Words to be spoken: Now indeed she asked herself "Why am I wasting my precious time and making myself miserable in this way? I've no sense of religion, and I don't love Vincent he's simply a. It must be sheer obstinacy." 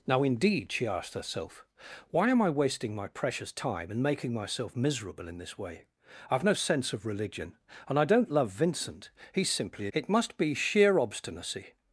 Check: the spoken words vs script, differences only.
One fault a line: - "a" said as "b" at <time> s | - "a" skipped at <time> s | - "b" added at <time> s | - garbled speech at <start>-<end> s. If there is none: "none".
none